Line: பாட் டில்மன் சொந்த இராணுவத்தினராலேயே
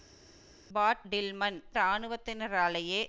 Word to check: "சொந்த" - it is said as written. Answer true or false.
false